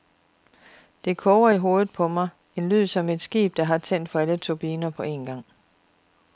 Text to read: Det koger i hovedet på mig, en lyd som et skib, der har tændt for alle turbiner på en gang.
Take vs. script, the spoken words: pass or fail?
pass